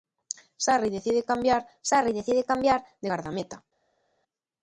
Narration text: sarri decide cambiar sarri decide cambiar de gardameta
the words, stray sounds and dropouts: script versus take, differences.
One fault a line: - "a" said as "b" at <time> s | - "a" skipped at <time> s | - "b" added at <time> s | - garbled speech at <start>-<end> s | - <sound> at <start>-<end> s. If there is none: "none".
none